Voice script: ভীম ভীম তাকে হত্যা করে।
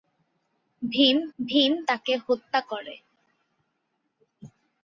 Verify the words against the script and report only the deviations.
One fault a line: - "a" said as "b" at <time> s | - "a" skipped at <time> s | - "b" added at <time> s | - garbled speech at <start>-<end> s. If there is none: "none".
none